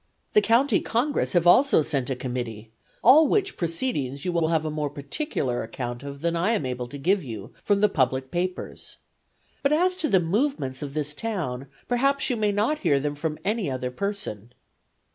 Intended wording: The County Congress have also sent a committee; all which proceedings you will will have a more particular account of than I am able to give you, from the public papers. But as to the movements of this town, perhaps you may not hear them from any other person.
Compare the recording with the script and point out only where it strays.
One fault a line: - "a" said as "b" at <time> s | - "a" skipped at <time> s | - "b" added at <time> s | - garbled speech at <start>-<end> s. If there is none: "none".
none